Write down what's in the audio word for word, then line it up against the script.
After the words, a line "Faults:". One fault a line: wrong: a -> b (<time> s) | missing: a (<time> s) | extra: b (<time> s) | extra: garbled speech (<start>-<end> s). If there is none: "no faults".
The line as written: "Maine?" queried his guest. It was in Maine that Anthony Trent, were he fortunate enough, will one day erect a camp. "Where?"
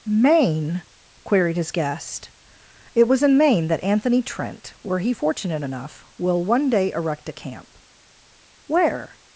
"Maine?" queried his guest. It was in Maine that Anthony Trent, were he fortunate enough, will one day erect a camp. "Where?"
Faults:
no faults